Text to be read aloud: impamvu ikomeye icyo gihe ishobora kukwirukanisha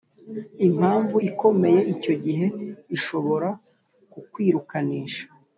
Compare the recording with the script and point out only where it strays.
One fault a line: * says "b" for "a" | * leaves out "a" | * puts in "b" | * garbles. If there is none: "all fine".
all fine